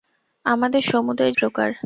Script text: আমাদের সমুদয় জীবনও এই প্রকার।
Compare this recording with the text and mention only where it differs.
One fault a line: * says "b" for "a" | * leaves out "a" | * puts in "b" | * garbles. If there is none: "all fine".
* leaves out "জীবনও এই"